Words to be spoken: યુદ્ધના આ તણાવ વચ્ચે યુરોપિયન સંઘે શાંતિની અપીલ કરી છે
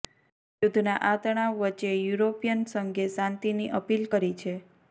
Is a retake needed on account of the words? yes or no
no